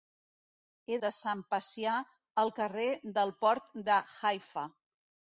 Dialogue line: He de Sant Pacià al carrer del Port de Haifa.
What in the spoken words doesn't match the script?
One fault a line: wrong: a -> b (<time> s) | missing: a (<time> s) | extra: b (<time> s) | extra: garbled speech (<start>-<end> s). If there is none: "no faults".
no faults